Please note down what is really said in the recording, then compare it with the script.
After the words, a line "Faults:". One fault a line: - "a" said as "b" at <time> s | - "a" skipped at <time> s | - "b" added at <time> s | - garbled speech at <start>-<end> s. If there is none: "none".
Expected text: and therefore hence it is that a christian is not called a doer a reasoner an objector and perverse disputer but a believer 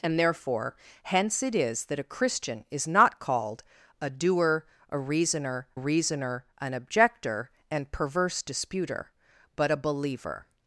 and therefore hence it is that a christian is not called a doer a reasoner reasoner an objector and perverse disputer but a believer
Faults:
- "reasoner" added at 5.7 s